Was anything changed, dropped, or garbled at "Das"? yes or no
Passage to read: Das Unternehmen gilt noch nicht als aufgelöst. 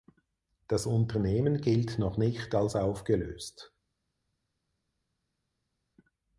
no